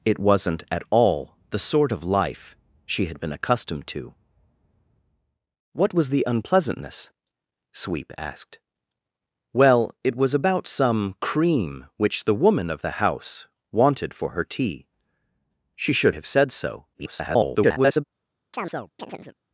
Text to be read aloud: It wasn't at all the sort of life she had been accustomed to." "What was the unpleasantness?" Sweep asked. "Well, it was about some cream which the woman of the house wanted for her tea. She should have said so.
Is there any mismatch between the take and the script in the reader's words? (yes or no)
yes